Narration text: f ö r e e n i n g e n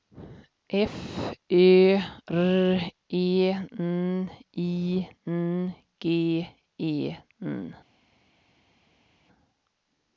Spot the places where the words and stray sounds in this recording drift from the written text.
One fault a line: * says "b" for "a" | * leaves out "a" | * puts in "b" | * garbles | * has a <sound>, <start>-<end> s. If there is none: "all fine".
* leaves out "e"